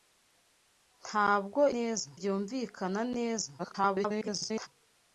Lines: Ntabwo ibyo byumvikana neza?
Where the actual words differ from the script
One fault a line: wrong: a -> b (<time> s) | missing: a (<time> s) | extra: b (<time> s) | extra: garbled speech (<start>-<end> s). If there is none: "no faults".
wrong: ibyo -> neza (1.7 s)
extra: garbled speech (3.6-4.7 s)